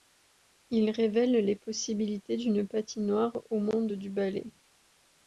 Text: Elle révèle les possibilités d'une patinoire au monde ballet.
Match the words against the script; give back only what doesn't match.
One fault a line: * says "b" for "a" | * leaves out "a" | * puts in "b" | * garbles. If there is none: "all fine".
* says "Il" for "Elle"
* puts in "du"